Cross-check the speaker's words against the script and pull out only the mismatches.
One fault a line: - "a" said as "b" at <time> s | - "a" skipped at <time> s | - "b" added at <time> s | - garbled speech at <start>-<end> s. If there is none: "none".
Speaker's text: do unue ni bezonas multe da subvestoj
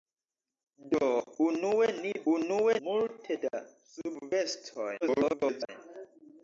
- "bezonas" said as "unue" at 2.3 s
- garbled speech at 5.0-5.7 s